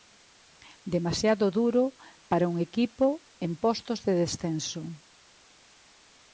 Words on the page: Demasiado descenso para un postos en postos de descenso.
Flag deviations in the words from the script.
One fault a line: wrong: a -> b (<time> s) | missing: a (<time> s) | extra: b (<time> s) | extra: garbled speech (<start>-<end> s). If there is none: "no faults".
wrong: descenso -> duro (1.6 s)
wrong: postos -> equipo (2.7 s)